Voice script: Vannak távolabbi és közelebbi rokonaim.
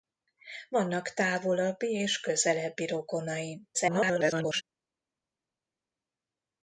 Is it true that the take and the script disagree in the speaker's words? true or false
true